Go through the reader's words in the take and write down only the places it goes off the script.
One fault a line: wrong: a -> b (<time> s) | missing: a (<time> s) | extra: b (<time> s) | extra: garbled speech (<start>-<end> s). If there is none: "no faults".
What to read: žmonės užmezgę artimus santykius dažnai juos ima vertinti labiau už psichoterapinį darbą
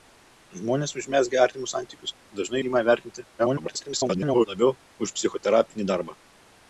missing: juos (2.6 s)
extra: garbled speech (3.4-4.5 s)